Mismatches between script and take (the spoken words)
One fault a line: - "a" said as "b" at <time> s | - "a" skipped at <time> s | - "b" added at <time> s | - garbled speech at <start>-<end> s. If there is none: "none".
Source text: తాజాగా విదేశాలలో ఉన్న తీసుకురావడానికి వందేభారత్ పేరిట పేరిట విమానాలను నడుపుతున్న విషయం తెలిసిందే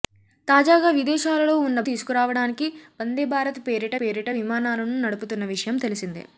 none